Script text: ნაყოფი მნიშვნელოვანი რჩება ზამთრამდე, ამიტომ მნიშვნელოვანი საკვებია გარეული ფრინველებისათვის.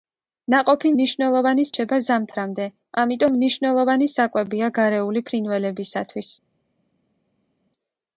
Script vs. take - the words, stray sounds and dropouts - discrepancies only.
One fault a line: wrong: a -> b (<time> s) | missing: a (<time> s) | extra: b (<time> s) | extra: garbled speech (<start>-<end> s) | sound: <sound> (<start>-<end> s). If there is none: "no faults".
no faults